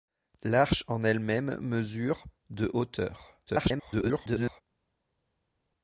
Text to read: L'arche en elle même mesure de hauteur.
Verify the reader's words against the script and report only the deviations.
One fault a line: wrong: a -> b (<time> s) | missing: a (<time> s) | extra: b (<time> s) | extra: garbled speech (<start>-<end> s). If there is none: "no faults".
extra: garbled speech (3.5-4.6 s)